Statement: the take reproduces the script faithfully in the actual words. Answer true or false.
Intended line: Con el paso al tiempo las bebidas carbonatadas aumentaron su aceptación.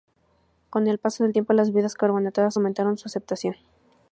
false